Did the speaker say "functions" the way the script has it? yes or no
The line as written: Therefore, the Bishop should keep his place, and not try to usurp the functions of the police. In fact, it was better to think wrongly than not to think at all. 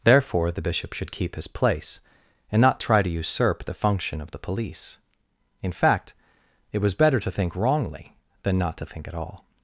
no